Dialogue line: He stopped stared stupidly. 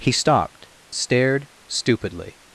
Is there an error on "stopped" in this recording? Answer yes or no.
no